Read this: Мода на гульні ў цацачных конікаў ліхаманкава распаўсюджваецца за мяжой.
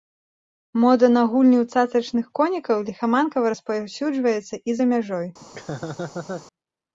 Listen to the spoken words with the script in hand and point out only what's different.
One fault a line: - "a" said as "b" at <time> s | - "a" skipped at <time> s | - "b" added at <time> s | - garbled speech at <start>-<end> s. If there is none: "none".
- "і" added at 4.7 s